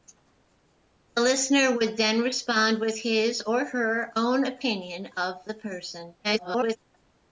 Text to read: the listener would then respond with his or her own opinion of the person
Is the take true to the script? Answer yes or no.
no